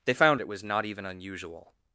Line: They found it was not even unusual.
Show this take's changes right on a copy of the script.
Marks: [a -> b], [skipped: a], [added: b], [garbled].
They found it was not even unusual.